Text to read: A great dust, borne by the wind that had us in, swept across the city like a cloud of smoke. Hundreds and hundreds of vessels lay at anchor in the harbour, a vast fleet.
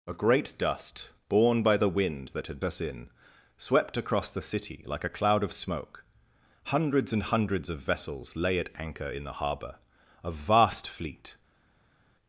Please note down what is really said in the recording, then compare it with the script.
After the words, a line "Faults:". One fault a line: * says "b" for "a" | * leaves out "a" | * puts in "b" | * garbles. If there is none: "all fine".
A great dust, borne by the wind that had us in, swept across the city like a cloud of smoke. Hundreds and hundreds of vessels lay at anchor in the harbour, a vast fleet.
Faults:
all fine